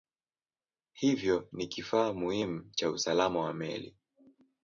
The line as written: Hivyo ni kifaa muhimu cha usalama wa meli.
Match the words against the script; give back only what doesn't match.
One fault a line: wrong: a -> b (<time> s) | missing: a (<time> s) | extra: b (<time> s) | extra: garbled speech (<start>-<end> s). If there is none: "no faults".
no faults